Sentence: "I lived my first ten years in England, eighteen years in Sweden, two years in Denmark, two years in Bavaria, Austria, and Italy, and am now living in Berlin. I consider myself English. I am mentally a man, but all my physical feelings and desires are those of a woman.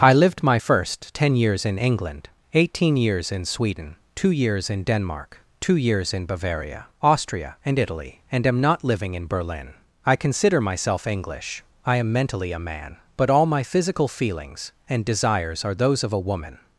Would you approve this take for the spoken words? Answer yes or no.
no